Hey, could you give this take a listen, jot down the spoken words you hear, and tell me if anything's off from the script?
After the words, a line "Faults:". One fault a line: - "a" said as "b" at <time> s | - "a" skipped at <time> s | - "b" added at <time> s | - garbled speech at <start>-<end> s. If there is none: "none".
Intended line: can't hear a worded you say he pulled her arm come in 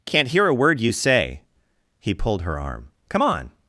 can't hear a word you say he pulled her arm come on
Faults:
- "worded" said as "word" at 0.5 s
- "in" said as "on" at 3.2 s